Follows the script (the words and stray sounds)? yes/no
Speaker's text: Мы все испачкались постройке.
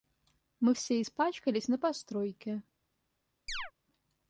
no